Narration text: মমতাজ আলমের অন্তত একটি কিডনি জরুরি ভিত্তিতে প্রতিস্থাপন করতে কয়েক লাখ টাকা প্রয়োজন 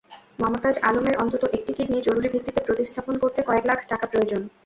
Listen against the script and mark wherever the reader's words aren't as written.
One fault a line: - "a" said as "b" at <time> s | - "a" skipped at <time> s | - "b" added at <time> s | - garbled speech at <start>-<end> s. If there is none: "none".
none